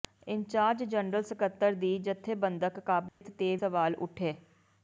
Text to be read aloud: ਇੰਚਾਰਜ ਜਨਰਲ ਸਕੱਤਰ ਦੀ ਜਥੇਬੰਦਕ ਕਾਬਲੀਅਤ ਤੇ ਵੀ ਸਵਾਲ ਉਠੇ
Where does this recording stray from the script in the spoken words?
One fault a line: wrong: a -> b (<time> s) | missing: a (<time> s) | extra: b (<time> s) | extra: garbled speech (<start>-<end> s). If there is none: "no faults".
missing: ਵੀ (3.5 s)